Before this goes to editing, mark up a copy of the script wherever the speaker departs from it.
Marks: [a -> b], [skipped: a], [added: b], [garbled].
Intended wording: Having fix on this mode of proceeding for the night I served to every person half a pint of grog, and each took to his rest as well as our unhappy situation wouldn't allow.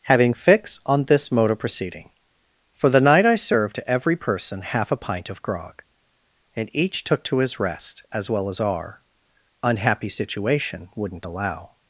Having fix on this mode of proceeding for the night I served to every person half a pint of grog, and each took to his rest as well as our unhappy situation wouldn't allow.